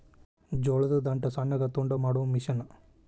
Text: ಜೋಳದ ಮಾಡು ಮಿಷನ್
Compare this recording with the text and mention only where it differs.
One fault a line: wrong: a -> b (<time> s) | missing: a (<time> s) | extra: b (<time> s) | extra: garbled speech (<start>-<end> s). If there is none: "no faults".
extra: ದಂಟ ಸಣ್ಣಗ ತುಂಡ (1.0 s)